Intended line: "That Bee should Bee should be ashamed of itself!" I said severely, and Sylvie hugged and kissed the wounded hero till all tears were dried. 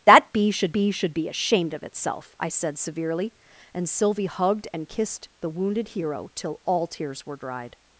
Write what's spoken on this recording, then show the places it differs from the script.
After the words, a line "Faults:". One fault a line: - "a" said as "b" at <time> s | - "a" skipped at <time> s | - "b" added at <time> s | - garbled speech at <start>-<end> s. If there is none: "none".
"That Bee should Bee should be ashamed of itself!" I said severely, and Sylvie hugged and kissed the wounded hero till all tears were dried.
Faults:
none